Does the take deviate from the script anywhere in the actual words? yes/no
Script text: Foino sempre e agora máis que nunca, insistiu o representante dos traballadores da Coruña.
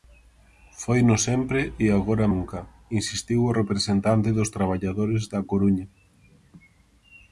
yes